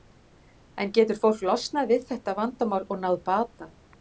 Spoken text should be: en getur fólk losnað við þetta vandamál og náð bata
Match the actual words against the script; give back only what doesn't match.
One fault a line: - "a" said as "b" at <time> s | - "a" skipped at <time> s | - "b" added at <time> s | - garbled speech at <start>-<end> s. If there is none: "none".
none